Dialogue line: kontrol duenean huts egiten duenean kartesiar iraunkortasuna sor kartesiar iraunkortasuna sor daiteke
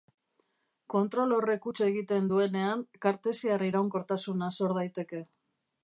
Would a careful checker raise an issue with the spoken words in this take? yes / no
yes